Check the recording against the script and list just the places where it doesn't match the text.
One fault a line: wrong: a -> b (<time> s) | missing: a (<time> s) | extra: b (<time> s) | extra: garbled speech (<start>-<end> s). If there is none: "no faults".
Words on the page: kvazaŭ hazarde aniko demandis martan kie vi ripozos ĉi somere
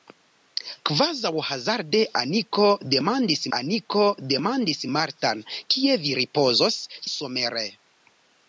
extra: aniko demandis (3.6 s)
missing: ĉi (6.8 s)